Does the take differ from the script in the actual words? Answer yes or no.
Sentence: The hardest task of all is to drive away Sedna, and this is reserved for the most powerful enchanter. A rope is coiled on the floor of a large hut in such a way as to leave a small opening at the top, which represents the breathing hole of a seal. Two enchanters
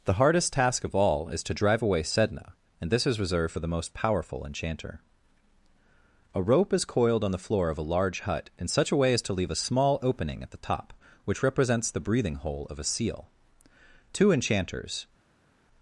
no